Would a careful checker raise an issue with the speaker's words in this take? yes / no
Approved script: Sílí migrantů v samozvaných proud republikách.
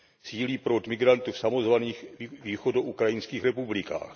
yes